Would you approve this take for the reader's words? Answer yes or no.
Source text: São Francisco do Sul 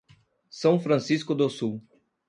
yes